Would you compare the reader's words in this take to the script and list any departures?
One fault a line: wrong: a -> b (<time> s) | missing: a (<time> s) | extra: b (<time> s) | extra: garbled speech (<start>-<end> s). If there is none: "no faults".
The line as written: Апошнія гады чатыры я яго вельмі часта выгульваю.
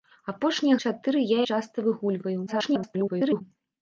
missing: гады (0.8 s)
missing: яго вельмі (1.4 s)
extra: garbled speech (2.5-3.4 s)